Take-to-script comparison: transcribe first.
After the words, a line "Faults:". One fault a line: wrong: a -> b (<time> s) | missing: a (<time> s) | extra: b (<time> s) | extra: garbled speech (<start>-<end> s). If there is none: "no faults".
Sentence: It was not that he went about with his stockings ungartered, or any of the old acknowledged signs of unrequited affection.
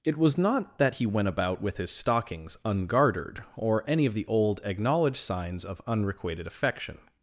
It was not that he went about with his stockings ungartered, or any of the old acknowledged signs of unrequited affection.
Faults:
no faults